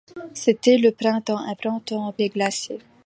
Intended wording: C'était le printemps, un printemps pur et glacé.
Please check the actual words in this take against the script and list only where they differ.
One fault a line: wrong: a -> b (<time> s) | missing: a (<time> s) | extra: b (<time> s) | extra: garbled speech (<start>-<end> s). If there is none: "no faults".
missing: pur (2.1 s)